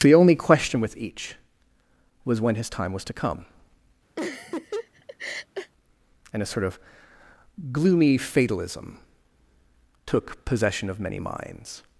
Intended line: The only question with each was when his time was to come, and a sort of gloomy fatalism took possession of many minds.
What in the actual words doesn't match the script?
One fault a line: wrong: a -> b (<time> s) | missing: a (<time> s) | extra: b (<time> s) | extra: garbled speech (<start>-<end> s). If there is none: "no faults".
no faults